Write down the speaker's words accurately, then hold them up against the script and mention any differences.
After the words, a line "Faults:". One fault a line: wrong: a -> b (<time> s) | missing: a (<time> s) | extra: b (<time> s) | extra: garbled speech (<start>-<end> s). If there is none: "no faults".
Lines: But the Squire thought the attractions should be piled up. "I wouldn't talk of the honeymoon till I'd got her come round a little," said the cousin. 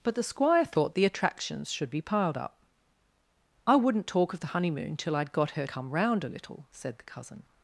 But the Squire thought the attractions should be piled up. "I wouldn't talk of the honeymoon till I'd got her come round a little," said the cousin.
Faults:
no faults